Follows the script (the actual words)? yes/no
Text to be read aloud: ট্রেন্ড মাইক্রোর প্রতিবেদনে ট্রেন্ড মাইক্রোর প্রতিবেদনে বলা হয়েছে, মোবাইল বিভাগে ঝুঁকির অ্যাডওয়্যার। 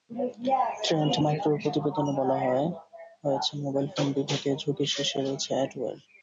no